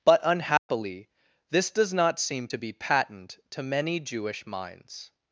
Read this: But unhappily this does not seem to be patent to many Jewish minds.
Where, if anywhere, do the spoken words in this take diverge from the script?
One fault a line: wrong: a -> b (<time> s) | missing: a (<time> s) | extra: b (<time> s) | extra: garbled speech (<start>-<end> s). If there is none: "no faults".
no faults